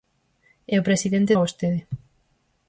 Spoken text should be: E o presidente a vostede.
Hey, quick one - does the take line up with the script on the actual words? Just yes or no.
yes